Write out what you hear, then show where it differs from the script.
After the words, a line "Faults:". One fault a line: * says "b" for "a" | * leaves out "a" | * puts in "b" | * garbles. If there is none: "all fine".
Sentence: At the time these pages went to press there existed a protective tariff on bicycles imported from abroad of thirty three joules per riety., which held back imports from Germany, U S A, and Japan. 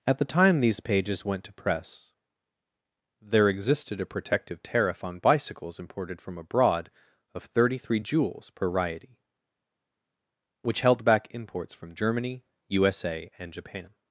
At the time these pages went to press there existed a protective tariff on bicycles imported from abroad of thirty three joules per riety., which held back imports from Germany, U S A, and Japan.
Faults:
all fine